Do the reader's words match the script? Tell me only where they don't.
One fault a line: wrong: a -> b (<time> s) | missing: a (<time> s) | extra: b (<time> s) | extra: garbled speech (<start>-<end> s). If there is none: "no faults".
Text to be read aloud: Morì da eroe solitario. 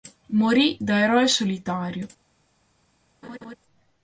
no faults